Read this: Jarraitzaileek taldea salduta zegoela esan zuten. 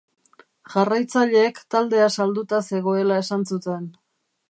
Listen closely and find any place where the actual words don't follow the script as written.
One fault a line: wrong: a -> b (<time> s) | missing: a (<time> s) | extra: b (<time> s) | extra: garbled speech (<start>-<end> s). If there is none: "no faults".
no faults